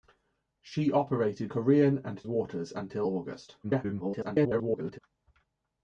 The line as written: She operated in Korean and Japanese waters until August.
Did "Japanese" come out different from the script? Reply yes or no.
yes